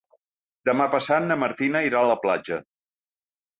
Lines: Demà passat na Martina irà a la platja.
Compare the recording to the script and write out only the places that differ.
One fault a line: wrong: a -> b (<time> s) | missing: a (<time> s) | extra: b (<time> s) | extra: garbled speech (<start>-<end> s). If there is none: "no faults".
no faults